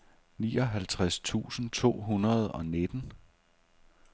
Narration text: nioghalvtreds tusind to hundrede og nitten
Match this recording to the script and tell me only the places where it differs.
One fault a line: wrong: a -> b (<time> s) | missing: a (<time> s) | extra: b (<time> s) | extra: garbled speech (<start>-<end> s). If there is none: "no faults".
no faults